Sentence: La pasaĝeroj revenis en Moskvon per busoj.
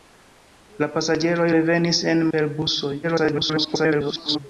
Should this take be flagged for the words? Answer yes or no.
yes